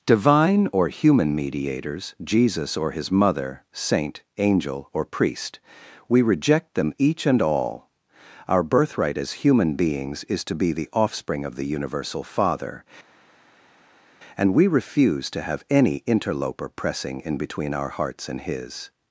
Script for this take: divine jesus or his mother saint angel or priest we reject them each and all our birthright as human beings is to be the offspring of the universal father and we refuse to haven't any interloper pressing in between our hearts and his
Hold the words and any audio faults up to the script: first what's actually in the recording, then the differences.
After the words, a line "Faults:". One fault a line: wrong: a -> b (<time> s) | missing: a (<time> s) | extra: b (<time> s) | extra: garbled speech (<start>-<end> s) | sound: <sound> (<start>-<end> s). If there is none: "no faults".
divine or human mediators jesus or his mother saint angel or priest we reject them each and all our birthright as human beings is to be the offspring of the universal father and we refuse to have any interloper pressing in between our hearts and his
Faults:
extra: or human mediators (0.7 s)
wrong: haven't -> have (15.4 s)